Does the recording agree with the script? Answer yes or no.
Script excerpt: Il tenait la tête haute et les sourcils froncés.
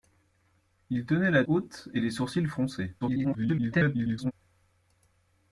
no